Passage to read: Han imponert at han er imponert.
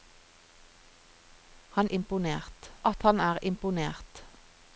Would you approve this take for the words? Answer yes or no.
yes